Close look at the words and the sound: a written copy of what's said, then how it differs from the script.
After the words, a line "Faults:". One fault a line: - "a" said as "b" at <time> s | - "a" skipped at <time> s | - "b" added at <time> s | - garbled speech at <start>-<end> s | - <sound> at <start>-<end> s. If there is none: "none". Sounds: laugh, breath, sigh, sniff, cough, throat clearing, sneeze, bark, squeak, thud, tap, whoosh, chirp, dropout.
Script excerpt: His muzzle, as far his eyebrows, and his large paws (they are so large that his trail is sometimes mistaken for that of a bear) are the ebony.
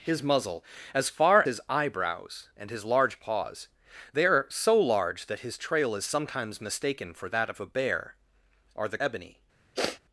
His muzzle, as far his eyebrows, and his large paws (they are so large that his trail is sometimes mistaken for that of a bear) are the ebony.
Faults:
- sniff at 9.7-10.0 s